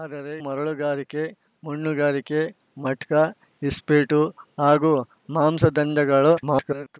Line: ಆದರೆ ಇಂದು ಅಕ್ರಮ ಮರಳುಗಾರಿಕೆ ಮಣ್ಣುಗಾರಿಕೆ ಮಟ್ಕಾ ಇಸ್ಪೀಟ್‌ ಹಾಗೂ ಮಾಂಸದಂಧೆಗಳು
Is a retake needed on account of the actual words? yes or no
yes